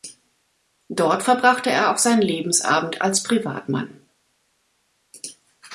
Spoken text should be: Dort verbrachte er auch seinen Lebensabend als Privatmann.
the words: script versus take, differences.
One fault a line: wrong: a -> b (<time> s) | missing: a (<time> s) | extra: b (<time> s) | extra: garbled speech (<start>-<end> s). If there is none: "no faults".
no faults